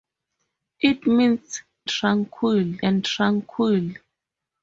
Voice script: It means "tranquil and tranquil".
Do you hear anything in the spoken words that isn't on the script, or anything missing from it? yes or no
no